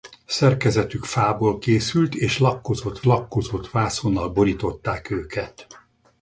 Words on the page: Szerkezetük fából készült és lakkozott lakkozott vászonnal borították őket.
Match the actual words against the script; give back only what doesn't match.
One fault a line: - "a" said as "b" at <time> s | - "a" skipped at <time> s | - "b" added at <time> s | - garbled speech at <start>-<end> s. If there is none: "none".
none